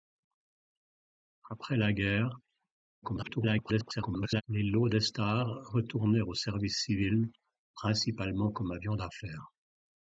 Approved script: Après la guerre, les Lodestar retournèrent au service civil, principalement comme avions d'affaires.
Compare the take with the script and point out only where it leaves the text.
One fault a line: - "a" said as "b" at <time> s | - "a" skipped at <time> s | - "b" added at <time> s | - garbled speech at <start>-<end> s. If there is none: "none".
- garbled speech at 3.0-4.4 s